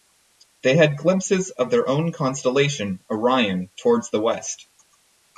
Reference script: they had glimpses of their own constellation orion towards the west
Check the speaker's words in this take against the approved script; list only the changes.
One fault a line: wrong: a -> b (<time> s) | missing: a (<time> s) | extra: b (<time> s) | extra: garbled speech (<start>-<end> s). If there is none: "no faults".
no faults